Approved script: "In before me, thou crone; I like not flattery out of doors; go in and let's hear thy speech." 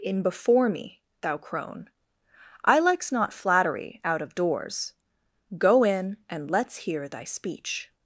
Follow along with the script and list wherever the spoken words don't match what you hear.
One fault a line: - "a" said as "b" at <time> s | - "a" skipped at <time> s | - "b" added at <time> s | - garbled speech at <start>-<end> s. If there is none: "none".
- "like" said as "likes" at 2.8 s